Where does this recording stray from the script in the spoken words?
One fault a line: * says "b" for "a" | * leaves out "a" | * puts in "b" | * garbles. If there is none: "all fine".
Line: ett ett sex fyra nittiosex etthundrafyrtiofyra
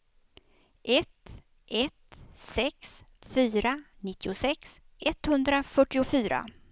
all fine